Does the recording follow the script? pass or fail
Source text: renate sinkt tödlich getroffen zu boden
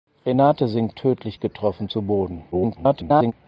fail